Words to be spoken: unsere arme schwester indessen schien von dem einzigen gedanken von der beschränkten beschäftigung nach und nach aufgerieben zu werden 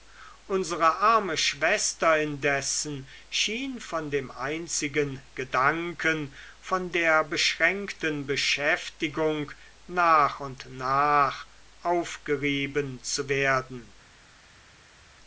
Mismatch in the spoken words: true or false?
false